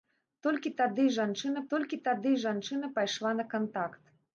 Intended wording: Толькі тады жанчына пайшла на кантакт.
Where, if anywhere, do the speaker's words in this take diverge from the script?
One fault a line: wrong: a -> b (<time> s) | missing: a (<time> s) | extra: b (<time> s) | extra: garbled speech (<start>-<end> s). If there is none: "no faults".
extra: толькі тады жанчына (1.7 s)